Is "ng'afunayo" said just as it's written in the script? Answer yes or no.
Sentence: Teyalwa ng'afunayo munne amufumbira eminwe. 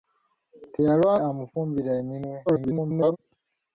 no